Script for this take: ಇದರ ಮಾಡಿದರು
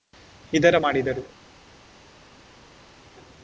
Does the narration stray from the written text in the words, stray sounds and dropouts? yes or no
no